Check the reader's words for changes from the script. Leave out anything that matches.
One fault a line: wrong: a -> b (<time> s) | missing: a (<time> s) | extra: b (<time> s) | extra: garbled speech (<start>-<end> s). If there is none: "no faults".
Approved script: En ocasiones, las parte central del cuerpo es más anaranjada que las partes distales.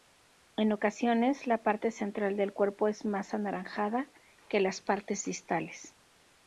wrong: las -> la (1.4 s)